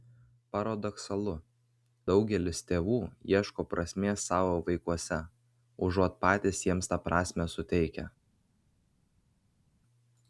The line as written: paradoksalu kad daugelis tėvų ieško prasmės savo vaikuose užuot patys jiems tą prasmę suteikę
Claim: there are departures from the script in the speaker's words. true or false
true